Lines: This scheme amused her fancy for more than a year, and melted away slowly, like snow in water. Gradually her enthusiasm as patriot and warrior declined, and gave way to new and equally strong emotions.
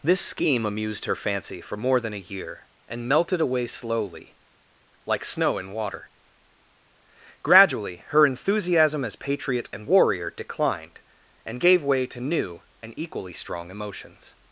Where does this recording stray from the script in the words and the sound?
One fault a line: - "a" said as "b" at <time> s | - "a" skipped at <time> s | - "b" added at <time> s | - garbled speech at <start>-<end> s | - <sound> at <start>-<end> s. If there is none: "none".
none